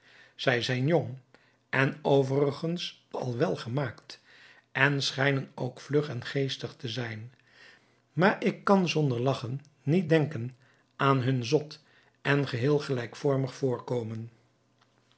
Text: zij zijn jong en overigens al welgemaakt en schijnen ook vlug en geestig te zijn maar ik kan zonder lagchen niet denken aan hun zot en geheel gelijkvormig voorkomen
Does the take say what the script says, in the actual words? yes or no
yes